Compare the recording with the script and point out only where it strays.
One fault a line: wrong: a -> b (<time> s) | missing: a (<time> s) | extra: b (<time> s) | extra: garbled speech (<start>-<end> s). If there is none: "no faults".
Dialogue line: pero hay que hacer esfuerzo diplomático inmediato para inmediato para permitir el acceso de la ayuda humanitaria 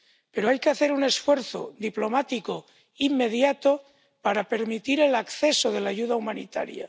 extra: un (0.9 s)
missing: inmediato para (4.4 s)